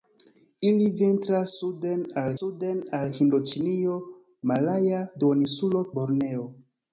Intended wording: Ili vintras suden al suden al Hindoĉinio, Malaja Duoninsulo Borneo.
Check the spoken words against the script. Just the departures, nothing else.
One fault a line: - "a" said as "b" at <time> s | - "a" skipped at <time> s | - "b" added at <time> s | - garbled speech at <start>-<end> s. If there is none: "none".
none